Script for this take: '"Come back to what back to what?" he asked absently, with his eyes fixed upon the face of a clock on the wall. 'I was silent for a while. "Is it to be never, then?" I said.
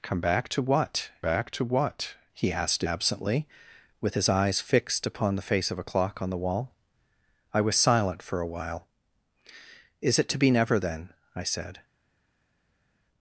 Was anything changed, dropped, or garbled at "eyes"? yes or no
no